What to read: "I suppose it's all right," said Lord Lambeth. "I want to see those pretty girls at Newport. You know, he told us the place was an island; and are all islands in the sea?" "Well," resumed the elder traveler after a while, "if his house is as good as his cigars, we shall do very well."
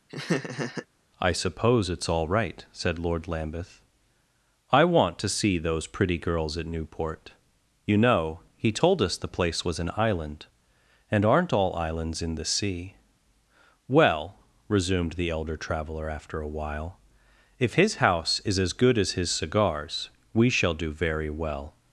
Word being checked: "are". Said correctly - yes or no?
no